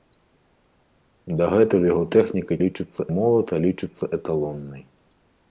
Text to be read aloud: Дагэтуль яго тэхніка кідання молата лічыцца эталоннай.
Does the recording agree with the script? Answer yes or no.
no